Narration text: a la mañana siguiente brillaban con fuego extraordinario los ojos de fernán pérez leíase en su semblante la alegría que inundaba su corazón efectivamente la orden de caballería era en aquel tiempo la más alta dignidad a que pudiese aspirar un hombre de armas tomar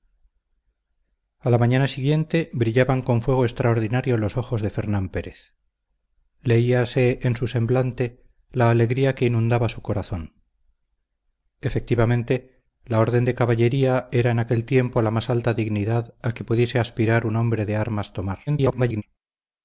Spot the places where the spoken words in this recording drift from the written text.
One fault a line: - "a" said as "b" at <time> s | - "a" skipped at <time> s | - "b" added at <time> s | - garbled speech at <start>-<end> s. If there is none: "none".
- garbled speech at 18.5-19.0 s